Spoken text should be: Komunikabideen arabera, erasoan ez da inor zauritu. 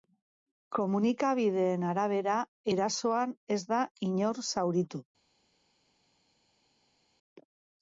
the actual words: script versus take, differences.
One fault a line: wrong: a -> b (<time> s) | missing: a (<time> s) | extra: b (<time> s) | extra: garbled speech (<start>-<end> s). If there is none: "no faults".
no faults